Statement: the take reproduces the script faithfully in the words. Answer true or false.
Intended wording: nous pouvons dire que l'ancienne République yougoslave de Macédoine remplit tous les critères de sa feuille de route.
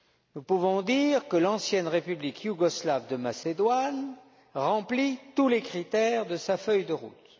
true